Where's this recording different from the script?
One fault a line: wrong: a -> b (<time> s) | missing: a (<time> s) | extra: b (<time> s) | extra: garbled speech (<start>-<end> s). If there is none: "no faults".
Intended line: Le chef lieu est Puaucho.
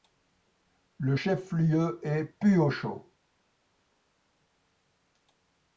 no faults